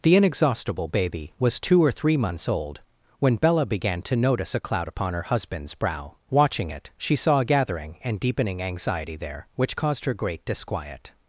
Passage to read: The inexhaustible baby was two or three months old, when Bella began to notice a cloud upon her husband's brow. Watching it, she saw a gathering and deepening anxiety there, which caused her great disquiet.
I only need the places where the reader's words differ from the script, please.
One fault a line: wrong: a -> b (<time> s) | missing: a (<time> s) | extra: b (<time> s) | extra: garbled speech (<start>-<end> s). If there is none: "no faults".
no faults